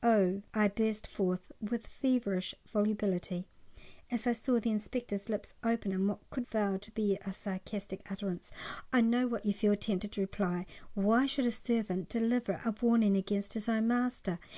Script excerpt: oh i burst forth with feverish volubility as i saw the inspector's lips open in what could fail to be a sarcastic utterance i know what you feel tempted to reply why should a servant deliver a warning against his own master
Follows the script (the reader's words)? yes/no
yes